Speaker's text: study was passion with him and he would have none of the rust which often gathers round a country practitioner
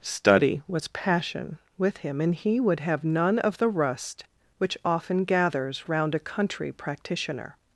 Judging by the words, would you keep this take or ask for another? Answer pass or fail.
pass